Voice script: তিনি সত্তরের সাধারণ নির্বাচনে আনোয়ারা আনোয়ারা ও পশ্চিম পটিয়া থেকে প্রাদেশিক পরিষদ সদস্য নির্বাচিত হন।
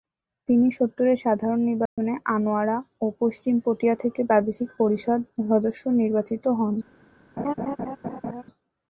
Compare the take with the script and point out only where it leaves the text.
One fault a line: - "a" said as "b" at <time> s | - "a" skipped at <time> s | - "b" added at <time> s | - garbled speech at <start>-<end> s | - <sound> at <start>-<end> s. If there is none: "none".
- dropout at 1.9-2.0 s
- "আনোয়ারা" skipped at 2.8 s
- laugh at 7.4-8.4 s